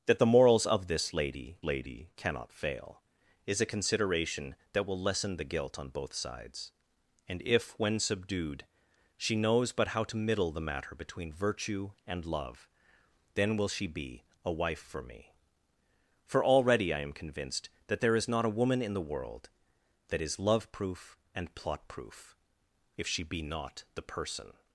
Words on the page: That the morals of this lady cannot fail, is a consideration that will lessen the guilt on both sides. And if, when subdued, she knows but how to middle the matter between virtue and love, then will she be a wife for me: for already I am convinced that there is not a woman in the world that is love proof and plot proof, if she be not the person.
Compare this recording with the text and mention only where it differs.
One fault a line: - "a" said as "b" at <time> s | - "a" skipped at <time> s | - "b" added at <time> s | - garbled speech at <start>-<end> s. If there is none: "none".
- "lady" added at 1.6 s